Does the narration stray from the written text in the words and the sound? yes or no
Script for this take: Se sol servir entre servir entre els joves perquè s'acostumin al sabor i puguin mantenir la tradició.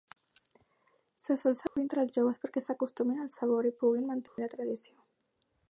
yes